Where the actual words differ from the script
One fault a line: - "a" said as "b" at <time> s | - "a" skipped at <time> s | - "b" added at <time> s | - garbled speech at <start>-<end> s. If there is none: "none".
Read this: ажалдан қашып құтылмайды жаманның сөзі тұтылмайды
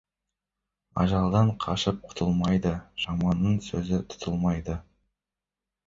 none